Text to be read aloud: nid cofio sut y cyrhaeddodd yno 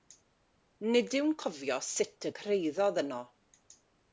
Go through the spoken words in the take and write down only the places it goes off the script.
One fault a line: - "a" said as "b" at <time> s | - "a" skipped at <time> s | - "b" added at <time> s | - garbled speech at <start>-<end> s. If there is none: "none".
- "yw'n" added at 1.2 s